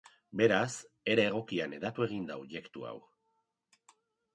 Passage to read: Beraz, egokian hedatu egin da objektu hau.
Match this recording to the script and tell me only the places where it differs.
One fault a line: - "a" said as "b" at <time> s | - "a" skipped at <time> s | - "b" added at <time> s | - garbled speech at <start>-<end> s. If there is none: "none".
- "era" added at 1.1 s